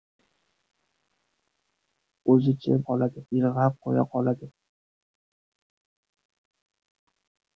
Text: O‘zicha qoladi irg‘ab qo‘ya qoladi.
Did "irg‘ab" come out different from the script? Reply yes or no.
no